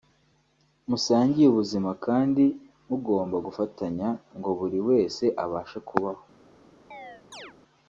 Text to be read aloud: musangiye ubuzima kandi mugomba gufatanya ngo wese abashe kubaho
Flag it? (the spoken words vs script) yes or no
yes